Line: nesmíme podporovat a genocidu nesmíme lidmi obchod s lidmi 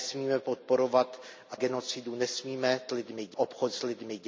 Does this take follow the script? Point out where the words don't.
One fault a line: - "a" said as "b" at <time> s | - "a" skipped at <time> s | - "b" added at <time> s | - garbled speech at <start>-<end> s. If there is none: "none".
none